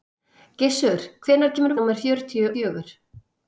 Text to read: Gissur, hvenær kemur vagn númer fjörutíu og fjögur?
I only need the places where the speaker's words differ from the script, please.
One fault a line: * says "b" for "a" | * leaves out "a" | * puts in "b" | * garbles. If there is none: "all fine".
* leaves out "vagn"
* leaves out "og"